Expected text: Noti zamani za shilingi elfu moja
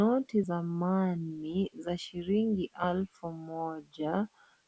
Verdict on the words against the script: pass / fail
pass